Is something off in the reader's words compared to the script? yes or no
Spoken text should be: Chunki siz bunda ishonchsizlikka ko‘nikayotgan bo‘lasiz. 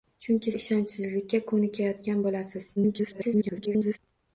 yes